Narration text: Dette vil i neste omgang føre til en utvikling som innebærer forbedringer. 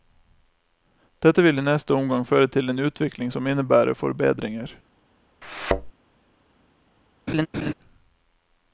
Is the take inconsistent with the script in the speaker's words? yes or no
no